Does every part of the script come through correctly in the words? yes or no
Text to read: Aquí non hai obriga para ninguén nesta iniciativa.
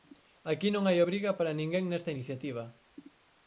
yes